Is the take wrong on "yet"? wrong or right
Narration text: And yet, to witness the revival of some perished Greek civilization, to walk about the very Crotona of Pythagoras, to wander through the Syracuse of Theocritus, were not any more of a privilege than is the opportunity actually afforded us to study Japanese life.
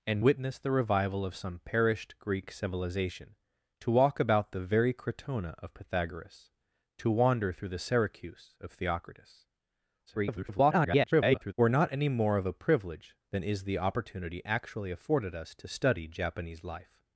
wrong